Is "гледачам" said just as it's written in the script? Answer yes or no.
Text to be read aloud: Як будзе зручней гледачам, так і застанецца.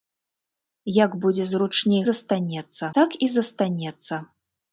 no